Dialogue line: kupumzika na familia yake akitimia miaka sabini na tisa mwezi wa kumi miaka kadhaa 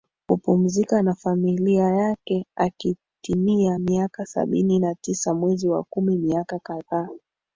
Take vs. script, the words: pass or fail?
pass